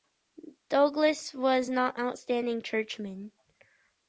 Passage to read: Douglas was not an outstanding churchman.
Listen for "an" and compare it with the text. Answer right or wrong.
wrong